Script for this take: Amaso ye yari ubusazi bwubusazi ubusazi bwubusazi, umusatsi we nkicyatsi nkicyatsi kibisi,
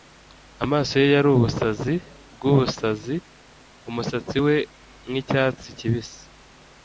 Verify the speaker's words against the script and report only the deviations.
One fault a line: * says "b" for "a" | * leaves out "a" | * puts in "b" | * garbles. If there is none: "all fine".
* leaves out "ubusazi bwubusazi"
* leaves out "nkicyatsi"